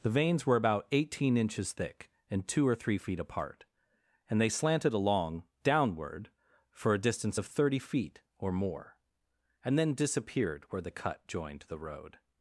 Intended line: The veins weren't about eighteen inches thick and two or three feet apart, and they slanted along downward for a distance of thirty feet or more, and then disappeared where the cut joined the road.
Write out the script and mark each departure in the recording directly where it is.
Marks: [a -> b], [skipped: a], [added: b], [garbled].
The veins [weren't -> were] about eighteen inches thick and two or three feet apart, and they slanted along downward for a distance of thirty feet or more, and then disappeared where the cut joined the road.